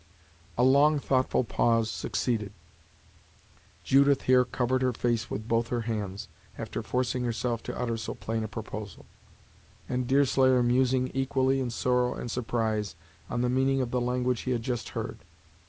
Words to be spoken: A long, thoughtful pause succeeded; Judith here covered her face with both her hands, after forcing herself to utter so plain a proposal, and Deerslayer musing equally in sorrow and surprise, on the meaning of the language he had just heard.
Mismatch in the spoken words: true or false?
false